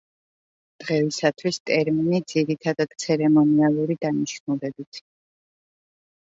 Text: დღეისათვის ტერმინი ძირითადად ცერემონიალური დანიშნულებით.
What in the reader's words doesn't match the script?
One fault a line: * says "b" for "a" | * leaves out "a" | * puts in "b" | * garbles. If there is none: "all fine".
all fine